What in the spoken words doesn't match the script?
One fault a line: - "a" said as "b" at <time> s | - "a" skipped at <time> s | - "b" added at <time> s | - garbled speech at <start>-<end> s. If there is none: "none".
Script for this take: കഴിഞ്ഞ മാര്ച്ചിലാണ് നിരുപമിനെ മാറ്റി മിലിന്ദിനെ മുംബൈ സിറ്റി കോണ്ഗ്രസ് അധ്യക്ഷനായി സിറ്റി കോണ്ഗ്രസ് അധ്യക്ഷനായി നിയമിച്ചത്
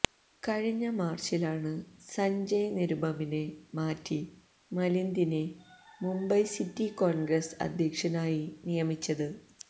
- "സഞ്ജയ്" added at 2.1 s
- "സിറ്റി കോണ്ഗ്രസ് അധ്യക്ഷനായി" skipped at 8.4 s